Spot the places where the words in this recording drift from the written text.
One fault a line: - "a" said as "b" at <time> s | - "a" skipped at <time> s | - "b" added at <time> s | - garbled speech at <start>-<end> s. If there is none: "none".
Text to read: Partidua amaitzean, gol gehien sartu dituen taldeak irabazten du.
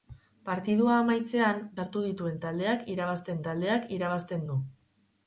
- "gol gehien sartu dituen" said as "sartu dituen taldeak irabazten" at 1.8 s